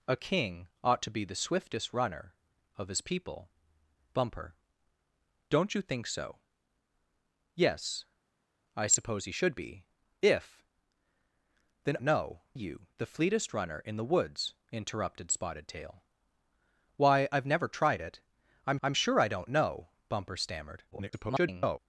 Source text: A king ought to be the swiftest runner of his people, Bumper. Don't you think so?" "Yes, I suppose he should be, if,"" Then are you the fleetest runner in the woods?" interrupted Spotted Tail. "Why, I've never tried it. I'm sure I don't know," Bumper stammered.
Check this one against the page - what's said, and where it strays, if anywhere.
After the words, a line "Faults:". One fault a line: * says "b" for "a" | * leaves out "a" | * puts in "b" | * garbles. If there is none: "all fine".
A king ought to be the swiftest runner of his people, Bumper. Don't you think so?" "Yes, I suppose he should be, if,"" Then know you the fleetest runner in the woods?" interrupted Spotted Tail. "Why, I've never tried it. I'm I'm sure I don't know," Bumper stammered. [garbled]
Faults:
* says "know" for "are"
* puts in "I'm"
* garbles